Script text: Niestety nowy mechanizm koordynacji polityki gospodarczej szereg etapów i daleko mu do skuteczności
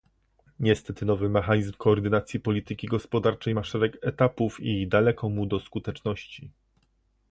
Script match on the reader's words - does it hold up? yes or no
no